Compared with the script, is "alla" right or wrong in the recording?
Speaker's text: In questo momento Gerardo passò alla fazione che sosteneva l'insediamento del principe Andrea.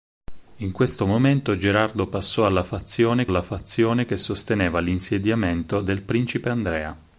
right